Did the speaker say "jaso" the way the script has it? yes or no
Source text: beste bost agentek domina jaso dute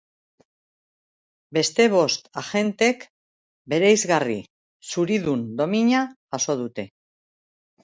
yes